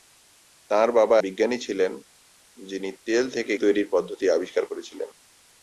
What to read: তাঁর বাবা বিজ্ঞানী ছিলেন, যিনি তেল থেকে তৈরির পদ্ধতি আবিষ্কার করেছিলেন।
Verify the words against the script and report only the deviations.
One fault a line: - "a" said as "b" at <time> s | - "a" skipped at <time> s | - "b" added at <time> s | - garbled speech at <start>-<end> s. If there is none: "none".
none